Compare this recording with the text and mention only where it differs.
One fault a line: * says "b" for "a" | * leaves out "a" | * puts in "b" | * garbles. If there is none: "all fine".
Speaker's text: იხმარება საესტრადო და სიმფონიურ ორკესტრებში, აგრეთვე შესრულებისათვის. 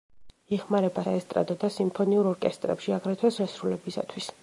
all fine